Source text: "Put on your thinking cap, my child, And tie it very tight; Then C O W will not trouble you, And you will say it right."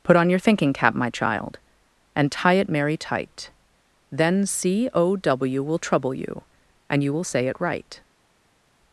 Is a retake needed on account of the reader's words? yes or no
yes